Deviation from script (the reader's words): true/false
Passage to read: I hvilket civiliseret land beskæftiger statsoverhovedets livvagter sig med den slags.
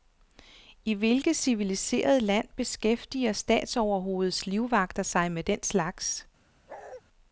false